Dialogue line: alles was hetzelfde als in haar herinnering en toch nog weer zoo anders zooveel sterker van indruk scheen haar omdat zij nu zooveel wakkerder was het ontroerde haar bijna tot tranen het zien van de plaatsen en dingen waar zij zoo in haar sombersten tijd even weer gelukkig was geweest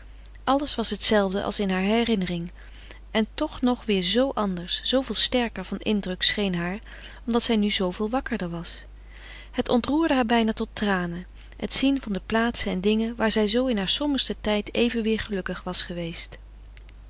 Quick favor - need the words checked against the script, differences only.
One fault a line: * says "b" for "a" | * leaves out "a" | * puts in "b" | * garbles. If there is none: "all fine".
all fine